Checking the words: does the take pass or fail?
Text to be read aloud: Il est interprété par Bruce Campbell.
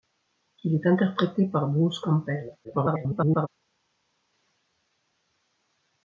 fail